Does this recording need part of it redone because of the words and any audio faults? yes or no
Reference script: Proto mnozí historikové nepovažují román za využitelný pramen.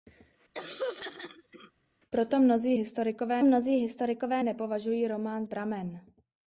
yes